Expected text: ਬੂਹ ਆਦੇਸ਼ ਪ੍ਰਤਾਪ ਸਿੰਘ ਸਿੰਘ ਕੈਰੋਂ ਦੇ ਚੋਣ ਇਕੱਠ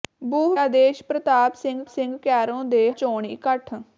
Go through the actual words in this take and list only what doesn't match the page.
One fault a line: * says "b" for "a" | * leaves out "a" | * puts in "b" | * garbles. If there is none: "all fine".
all fine